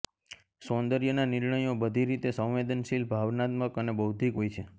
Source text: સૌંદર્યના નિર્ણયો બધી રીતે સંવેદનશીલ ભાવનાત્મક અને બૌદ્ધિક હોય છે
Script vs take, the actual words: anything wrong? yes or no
no